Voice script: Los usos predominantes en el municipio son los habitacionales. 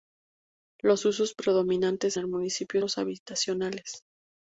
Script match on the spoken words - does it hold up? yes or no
no